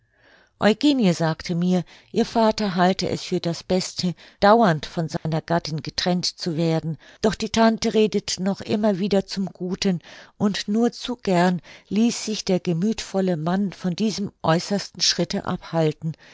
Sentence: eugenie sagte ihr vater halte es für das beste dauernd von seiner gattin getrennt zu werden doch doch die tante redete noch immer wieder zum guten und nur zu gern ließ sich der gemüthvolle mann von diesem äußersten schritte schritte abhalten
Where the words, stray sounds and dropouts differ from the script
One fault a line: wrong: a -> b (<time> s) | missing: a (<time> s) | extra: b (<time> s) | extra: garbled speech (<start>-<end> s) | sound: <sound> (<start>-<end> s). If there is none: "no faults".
extra: mir (1.6 s)
sound: dropout (5.2-5.3 s)
missing: doch (7.4 s)
missing: schritte (15.4 s)